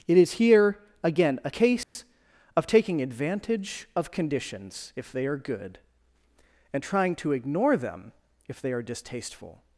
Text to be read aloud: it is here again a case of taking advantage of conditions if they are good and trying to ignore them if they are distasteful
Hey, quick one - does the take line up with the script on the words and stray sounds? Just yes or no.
no